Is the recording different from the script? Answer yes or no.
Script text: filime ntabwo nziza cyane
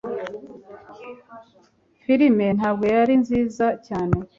yes